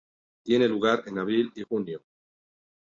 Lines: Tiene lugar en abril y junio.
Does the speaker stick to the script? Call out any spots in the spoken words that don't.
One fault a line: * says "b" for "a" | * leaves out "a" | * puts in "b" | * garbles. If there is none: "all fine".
all fine